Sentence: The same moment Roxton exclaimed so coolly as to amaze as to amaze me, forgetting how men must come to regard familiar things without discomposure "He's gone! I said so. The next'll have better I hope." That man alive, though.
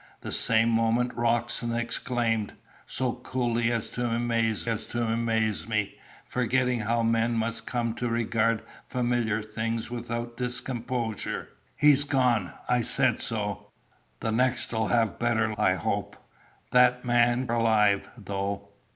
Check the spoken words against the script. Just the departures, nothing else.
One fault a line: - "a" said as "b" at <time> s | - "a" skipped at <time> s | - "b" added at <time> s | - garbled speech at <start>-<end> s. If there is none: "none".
none